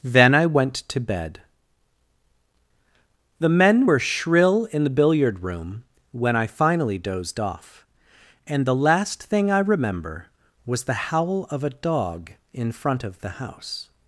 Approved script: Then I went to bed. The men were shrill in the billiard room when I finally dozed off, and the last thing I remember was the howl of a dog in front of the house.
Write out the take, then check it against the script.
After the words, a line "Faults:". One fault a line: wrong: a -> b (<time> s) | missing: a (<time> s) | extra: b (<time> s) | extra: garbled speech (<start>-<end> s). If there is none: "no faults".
Then I went to bed. The men were shrill in the billiard room when I finally dozed off, and the last thing I remember was the howl of a dog in front of the house.
Faults:
no faults